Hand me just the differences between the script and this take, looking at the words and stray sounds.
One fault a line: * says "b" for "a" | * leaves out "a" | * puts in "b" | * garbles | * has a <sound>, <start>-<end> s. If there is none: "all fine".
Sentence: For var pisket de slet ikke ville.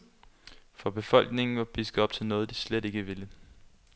* puts in "befolkningen"
* puts in "op til noget"